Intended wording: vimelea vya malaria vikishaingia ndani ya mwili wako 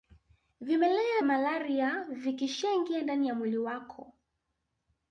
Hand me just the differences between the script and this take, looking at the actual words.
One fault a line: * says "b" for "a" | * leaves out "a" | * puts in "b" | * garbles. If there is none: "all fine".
* leaves out "vya"